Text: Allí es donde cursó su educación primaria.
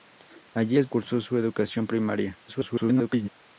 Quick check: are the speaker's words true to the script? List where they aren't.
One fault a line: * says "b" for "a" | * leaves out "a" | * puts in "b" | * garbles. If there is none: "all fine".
* leaves out "donde"
* garbles